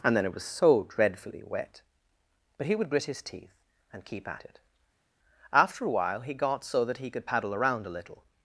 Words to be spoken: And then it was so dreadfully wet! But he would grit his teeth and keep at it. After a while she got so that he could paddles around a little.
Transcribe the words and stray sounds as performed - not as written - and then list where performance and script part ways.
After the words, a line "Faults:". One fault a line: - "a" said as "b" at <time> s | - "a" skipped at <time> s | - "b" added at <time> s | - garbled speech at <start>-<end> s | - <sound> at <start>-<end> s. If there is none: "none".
And then it was so dreadfully wet! But he would grit his teeth and keep at it. After a while he got so that he could paddle around a little.
Faults:
- "she" said as "he" at 6.2 s
- "paddles" said as "paddle" at 7.2 s